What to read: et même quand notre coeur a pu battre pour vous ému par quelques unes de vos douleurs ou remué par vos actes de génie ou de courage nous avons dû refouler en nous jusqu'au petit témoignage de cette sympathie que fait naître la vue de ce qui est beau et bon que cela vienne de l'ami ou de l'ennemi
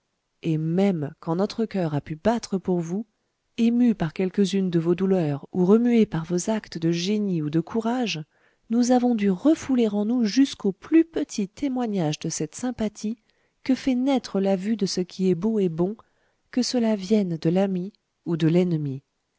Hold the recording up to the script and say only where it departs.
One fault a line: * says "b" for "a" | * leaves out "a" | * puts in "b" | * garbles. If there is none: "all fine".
* puts in "plus"